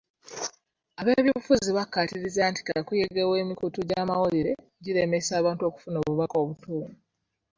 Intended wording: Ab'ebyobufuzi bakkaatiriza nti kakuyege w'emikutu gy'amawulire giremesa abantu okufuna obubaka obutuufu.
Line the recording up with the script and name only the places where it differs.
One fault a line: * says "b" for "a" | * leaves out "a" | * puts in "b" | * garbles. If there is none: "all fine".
all fine